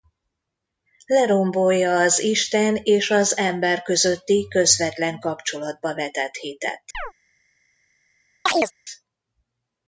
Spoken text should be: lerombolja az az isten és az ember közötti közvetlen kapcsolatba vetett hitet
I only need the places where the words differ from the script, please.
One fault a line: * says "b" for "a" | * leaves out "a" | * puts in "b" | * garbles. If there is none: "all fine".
* leaves out "az"